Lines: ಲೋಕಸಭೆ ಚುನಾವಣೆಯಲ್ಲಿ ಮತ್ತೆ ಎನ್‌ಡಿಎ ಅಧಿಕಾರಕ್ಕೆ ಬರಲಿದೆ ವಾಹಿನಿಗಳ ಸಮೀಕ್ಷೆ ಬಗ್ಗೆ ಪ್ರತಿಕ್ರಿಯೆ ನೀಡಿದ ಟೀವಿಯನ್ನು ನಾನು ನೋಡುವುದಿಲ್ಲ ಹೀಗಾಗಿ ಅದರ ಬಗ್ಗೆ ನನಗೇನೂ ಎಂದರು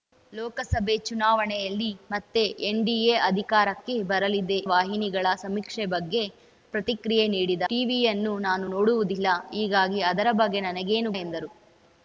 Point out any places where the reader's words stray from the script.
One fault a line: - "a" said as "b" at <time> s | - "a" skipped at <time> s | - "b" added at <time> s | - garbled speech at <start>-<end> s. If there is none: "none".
none